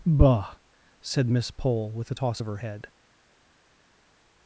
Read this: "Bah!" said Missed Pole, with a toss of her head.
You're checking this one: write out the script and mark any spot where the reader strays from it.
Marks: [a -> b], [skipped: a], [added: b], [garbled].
"Bah!" said [Missed -> Miss] Pole, with a toss of her head.